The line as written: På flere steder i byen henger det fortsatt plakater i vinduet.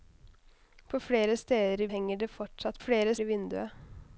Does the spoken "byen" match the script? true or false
false